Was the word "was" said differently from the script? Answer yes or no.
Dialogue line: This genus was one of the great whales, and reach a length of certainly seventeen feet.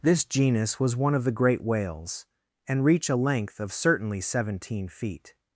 no